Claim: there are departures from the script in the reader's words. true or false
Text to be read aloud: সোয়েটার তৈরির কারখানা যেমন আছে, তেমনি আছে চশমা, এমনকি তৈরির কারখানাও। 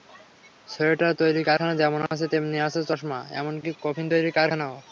true